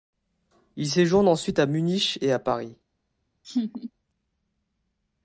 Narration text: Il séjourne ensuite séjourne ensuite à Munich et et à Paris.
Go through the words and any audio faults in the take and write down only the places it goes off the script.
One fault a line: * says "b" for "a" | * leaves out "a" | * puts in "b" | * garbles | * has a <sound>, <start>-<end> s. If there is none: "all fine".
* leaves out "séjourne ensuite"
* leaves out "et"
* has a laugh, 3.4-3.9 s